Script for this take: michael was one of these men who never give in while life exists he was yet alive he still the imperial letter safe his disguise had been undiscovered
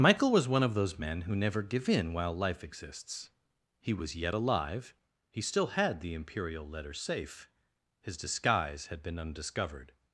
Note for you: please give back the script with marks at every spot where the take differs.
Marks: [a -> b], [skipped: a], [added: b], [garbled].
michael was one of [these -> those] men who never give in while life exists he was yet alive he still [added: had] the imperial letter safe his disguise had been undiscovered